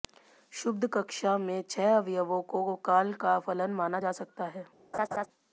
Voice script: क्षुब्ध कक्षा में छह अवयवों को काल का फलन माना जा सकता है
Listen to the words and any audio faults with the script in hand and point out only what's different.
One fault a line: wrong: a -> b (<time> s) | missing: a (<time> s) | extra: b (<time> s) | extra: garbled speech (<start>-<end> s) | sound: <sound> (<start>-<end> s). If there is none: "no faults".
sound: laugh (4.9-5.3 s)